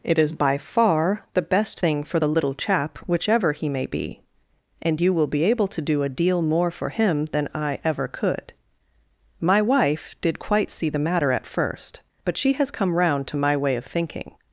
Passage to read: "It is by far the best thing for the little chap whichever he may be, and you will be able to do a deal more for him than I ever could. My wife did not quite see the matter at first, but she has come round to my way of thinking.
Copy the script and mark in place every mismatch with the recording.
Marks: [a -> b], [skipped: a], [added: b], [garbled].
"It is by far the best thing for the little chap whichever he may be, and you will be able to do a deal more for him than I ever could. My wife did [skipped: not] quite see the matter at first, but she has come round to my way of thinking.